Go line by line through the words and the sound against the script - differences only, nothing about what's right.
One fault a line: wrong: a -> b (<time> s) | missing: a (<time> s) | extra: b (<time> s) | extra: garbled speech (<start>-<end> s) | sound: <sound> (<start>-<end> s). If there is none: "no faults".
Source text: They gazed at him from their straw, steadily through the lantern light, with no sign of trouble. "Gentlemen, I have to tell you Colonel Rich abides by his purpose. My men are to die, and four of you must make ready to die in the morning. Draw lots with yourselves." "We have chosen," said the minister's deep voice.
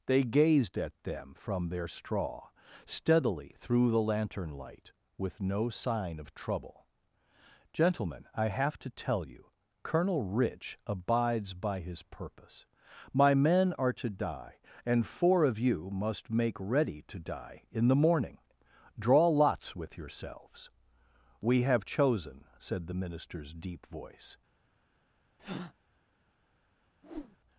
wrong: him -> them (1.0 s)
sound: breath (25.4-25.7 s)
sound: whoosh (27.0-27.4 s)